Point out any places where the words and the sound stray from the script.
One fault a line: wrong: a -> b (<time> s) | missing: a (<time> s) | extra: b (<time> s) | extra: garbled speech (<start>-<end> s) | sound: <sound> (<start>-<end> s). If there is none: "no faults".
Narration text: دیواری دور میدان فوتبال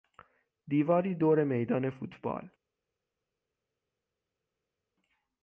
no faults